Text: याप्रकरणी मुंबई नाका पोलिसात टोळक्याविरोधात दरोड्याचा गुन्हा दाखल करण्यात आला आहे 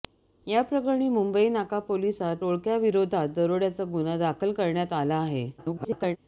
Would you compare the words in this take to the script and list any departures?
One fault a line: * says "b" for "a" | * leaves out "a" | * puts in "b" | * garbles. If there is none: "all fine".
* garbles